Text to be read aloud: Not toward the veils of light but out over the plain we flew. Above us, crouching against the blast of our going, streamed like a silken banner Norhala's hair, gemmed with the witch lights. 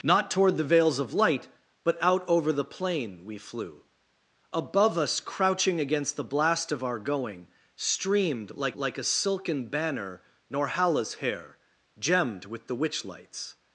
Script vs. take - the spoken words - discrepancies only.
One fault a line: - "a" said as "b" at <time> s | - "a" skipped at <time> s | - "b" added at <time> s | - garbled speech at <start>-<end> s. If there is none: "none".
- "like" added at 8.7 s